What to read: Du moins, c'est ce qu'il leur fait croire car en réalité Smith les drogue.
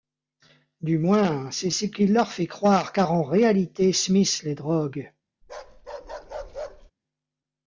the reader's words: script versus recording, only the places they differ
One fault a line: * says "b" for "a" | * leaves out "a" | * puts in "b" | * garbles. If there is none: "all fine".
all fine